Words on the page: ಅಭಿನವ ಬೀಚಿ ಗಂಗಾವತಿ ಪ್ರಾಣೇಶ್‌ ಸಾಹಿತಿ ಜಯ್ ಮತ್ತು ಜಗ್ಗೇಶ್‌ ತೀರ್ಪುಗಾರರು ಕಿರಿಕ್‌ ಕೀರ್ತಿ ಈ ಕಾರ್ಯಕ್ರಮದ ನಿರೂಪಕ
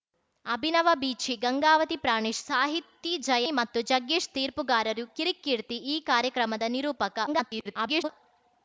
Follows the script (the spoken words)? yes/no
no